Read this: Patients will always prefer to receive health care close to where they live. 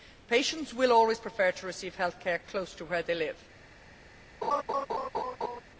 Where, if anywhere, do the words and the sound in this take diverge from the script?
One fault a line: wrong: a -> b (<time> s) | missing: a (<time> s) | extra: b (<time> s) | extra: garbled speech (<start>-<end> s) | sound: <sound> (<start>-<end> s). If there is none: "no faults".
sound: laugh (4.4-5.6 s)